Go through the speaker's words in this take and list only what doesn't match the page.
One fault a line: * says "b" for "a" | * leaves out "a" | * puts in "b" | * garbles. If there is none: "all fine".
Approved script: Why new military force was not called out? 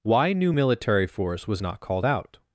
all fine